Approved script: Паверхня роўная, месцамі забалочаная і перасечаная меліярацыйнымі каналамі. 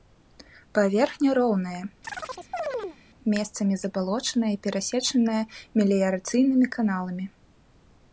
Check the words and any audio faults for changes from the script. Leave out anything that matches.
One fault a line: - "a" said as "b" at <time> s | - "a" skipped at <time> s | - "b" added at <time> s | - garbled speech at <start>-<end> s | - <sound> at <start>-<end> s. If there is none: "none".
- chirp at 2.0-3.0 s